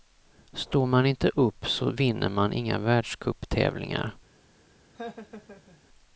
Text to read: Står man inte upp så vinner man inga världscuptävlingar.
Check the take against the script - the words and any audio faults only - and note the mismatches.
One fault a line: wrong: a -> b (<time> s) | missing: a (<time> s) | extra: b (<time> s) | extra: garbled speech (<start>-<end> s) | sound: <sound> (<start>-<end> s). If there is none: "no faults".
sound: laugh (4.9-5.8 s)